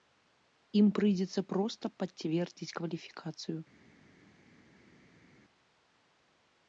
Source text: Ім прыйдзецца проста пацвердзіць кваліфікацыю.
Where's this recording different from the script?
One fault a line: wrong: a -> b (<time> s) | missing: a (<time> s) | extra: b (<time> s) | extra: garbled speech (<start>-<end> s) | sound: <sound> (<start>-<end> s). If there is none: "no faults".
no faults